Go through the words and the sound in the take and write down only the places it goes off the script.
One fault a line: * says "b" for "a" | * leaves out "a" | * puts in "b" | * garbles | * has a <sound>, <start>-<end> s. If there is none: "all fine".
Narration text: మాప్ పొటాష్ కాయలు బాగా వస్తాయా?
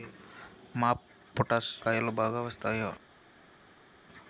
all fine